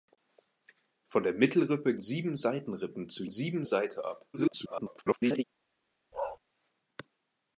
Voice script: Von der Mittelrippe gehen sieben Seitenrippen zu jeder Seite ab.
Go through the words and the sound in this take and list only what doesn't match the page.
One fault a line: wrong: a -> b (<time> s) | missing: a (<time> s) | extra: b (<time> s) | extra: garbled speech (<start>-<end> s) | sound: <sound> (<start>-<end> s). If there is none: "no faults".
missing: gehen (1.9 s)
wrong: jeder -> sieben (3.3 s)
extra: garbled speech (4.3-5.4 s)
sound: bark (6.1-6.4 s)